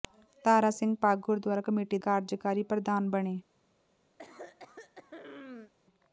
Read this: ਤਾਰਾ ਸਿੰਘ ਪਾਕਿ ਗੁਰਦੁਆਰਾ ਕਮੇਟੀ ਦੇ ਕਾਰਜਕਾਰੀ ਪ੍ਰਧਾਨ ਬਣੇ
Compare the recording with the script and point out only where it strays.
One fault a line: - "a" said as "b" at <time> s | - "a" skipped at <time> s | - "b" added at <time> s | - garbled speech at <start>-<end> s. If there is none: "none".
- "ਦੇ" skipped at 2.0 s